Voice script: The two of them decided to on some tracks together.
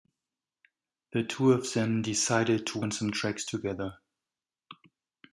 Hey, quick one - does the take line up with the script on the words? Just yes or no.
yes